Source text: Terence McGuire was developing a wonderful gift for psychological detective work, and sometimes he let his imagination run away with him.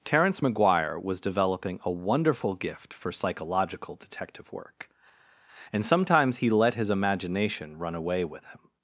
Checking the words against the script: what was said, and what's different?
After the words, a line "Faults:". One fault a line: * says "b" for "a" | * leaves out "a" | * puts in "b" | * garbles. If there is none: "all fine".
Terence McGuire was developing a wonderful gift for psychological detective work, and sometimes he let his imagination run away with him.
Faults:
all fine